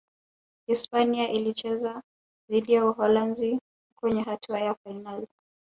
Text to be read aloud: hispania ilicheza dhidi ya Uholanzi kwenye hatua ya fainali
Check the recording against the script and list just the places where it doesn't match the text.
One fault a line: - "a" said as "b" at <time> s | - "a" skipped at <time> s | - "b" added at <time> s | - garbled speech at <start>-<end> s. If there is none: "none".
none